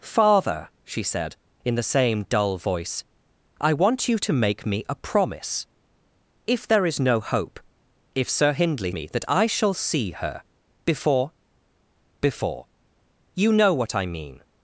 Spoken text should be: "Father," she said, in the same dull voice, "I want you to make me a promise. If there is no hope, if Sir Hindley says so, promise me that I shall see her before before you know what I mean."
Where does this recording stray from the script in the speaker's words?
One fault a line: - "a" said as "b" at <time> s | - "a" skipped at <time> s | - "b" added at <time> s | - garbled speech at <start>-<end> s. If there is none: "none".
- "says so promise" skipped at 8.9 s